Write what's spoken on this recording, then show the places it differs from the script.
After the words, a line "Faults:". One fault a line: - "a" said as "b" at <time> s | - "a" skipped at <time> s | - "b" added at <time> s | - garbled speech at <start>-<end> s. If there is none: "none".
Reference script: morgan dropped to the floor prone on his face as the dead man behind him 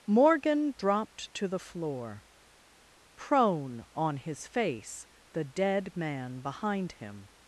morgan dropped to the floor prone on his face the dead man behind him
Faults:
- "as" skipped at 5.1 s